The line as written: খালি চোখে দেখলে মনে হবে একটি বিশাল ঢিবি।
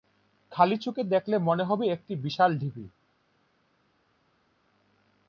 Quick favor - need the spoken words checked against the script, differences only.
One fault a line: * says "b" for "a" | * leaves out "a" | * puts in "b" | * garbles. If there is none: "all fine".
all fine